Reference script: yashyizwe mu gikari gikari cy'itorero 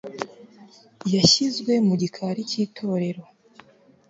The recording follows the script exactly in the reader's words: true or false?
false